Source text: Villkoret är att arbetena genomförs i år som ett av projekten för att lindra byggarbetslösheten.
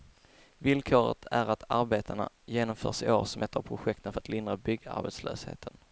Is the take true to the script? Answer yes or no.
yes